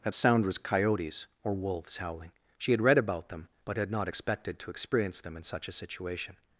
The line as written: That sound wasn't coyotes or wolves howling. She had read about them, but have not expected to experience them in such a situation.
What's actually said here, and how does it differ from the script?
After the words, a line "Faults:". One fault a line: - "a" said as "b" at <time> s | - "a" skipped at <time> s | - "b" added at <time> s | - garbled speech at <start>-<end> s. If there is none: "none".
That sound was coyotes or wolves howling. She had read about them, but had not expected to experience them in such a situation.
Faults:
- "wasn't" said as "was" at 0.4 s
- "have" said as "had" at 3.8 s